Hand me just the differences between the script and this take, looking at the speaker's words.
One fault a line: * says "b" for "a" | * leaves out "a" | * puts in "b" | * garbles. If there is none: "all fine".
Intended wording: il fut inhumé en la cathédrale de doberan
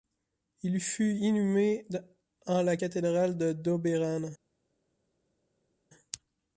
all fine